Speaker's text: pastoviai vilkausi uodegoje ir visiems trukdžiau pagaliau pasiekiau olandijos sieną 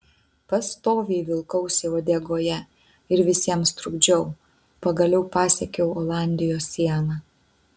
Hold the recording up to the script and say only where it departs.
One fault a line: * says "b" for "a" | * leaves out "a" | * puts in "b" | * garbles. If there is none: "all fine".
all fine